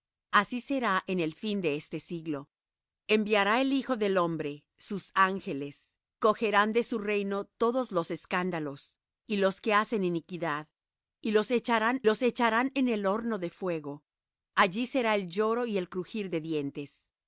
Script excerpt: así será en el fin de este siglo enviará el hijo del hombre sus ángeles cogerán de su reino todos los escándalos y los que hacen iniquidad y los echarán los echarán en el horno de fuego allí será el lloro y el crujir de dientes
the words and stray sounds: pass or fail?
pass